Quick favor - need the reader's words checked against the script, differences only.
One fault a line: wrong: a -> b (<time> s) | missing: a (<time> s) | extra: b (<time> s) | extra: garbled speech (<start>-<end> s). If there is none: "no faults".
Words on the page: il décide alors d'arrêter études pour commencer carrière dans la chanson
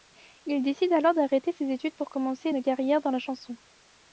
extra: ses (1.5 s)
extra: une (2.5 s)